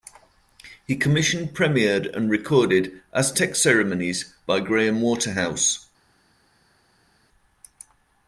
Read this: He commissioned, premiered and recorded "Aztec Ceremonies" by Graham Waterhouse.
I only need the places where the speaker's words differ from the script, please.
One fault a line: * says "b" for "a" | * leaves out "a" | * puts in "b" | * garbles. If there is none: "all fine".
all fine